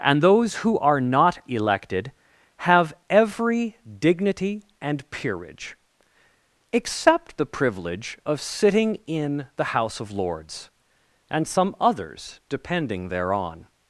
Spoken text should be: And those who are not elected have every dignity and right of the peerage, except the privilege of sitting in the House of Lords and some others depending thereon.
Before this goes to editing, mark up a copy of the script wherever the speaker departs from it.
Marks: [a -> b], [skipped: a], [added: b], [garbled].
And those who are not elected have every dignity and [skipped: right of the] peerage, except the privilege of sitting in the House of Lords and some others depending thereon.